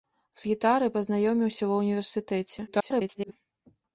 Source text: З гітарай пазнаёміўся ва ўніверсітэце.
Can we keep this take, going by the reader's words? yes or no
no